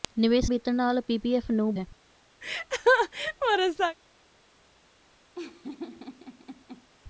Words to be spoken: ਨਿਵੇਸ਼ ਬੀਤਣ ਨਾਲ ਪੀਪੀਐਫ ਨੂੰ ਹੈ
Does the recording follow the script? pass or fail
pass